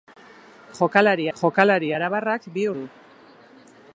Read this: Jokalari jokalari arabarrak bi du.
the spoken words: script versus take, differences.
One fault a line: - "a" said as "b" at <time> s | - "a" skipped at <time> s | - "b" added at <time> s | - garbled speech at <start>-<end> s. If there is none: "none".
none